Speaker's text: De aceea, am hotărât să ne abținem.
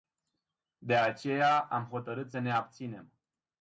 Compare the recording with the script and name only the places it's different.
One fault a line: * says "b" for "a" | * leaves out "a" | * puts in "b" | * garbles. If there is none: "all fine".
all fine